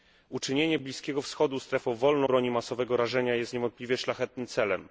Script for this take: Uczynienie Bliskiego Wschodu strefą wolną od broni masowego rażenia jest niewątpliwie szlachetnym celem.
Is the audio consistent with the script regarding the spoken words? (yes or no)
no